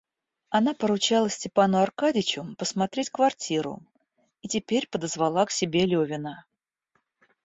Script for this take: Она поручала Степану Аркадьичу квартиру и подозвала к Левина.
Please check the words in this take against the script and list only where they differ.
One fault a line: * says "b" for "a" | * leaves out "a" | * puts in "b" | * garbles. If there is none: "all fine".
* puts in "посмотреть"
* puts in "теперь"
* puts in "себе"